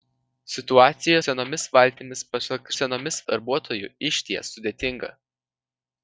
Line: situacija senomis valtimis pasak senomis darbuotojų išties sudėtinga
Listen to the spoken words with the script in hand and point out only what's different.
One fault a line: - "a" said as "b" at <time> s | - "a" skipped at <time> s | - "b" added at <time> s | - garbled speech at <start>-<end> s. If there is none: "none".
none